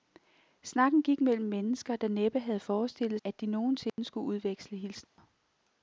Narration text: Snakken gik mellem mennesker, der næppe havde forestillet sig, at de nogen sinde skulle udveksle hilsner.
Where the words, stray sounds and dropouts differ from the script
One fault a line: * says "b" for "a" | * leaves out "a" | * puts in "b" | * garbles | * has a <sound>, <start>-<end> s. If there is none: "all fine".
* leaves out "sig"
* has a dropout, 3.9-4.0 s
* has a dropout, 5.0-5.2 s